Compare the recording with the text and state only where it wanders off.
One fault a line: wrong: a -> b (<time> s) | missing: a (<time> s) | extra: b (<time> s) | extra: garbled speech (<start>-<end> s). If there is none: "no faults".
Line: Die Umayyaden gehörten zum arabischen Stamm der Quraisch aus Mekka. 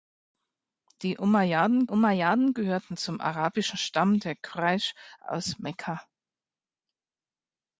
extra: Umayyaden (1.9 s)